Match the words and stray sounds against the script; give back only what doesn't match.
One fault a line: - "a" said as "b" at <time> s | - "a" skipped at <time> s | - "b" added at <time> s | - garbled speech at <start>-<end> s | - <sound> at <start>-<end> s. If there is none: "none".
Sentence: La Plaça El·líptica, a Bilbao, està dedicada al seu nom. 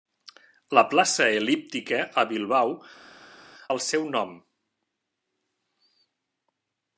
- "està dedicada" skipped at 2.7 s